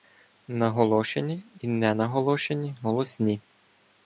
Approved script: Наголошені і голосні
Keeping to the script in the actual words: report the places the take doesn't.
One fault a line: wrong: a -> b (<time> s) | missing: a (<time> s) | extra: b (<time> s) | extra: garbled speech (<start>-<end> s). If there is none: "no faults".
extra: ненаголошені (1.7 s)